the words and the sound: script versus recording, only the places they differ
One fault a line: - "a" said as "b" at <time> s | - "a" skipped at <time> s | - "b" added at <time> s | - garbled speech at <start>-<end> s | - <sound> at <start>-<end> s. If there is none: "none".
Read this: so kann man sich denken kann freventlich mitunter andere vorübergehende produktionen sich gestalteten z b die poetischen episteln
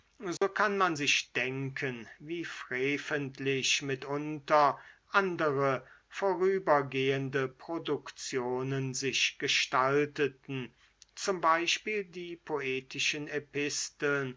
- dropout at 0.4-0.4 s
- "kann" said as "wie" at 2.2 s